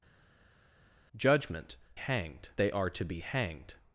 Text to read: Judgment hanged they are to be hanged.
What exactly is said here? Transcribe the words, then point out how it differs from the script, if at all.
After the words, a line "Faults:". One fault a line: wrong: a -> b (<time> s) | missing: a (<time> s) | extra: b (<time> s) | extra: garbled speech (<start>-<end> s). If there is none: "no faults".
Judgment hanged they are to be hanged.
Faults:
no faults